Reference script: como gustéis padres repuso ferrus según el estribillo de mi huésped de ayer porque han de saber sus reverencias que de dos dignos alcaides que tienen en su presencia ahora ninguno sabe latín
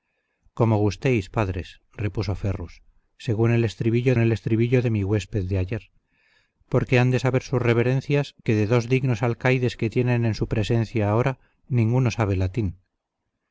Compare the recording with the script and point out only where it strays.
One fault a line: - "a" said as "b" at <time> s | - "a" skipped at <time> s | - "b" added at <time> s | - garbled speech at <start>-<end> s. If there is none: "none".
- "el estribillo" added at 4.2 s